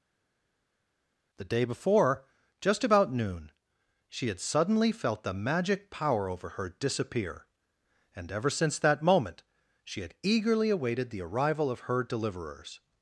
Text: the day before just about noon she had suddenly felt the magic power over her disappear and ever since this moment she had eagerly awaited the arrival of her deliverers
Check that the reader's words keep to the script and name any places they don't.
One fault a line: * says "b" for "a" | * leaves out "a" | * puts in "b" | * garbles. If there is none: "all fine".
* says "that" for "this"